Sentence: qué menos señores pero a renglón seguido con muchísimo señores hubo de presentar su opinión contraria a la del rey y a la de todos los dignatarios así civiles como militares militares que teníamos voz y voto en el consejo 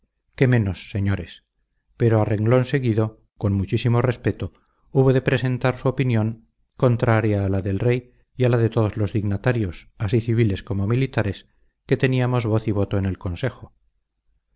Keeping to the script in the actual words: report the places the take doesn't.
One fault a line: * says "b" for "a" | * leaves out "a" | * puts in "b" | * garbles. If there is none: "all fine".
* says "respeto" for "señores"
* leaves out "militares"